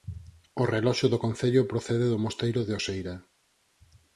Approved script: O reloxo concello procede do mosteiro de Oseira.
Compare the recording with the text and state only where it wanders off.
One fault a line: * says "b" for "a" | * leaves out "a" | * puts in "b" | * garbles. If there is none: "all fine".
* puts in "do"